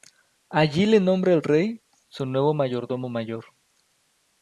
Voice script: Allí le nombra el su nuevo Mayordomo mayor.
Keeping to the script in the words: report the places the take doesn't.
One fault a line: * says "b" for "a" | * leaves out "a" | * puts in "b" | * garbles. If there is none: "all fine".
* puts in "rey"